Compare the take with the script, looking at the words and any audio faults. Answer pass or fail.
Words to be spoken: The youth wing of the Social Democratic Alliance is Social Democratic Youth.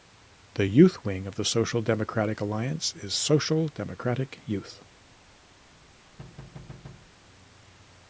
fail